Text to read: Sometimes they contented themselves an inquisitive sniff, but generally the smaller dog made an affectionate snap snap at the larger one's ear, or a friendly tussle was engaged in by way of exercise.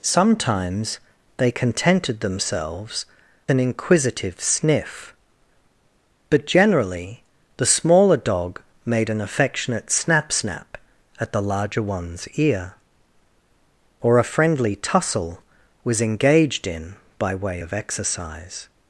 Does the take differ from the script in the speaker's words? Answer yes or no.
no